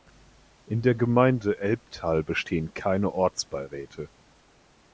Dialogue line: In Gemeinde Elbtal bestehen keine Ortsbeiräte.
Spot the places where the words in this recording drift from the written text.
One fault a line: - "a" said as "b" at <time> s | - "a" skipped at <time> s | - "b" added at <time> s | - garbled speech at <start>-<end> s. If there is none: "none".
- "der" added at 0.8 s